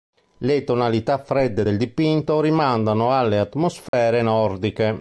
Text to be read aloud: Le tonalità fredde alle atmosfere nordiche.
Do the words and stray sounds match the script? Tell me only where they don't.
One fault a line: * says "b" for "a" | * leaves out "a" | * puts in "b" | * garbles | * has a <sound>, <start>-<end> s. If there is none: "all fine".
* puts in "del dipinto rimandano"
* has a dropout, 3.9-3.9 s